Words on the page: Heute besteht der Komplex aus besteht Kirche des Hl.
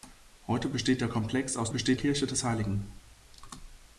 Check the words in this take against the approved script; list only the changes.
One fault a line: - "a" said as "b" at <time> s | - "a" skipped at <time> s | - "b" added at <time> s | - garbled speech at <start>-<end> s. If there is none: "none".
none